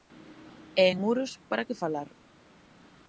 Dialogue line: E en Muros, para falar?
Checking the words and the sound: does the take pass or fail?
fail